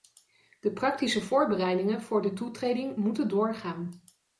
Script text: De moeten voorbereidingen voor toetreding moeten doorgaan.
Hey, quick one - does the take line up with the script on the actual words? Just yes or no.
no